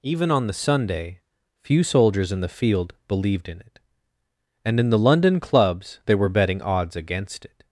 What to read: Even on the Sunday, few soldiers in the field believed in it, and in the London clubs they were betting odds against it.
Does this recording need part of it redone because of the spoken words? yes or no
no